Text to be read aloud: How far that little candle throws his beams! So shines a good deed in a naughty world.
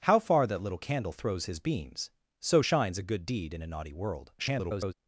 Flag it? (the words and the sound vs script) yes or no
yes